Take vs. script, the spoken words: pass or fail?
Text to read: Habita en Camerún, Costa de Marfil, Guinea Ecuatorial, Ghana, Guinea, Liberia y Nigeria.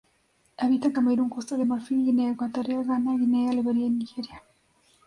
pass